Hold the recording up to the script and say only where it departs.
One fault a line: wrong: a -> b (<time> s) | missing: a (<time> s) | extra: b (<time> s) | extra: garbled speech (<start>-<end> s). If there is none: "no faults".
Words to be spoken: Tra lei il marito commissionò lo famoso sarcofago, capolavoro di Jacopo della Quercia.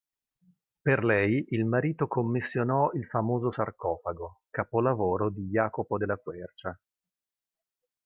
wrong: Tra -> Per (0.8 s)
wrong: lo -> il (2.9 s)